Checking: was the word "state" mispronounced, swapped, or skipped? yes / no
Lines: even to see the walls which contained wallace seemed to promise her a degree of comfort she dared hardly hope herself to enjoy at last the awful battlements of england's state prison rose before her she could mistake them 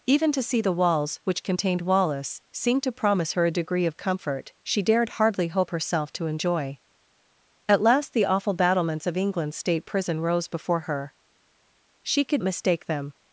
no